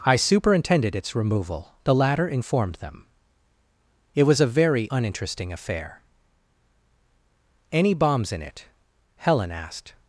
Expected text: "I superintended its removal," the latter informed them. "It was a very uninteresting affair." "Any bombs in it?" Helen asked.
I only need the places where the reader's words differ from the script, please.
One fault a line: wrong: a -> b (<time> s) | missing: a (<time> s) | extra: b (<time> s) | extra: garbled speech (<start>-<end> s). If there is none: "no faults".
no faults